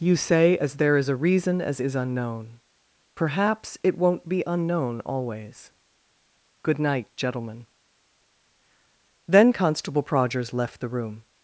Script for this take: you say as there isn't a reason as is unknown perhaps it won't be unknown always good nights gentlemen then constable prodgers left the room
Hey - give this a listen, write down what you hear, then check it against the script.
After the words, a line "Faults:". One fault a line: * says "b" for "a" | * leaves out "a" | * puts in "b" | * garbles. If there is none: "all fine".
you say as there is a reason as is unknown perhaps it won't be unknown always good night gentlemen then constable prodgers left the room
Faults:
* says "is" for "isn't"
* says "night" for "nights"